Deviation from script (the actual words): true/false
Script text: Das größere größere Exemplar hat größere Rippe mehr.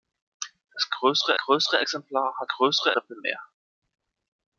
false